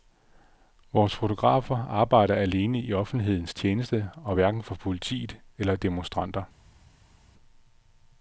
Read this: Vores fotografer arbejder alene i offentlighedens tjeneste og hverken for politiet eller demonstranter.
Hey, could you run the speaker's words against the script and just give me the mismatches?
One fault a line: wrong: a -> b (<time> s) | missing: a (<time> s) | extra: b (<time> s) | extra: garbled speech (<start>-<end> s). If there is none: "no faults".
no faults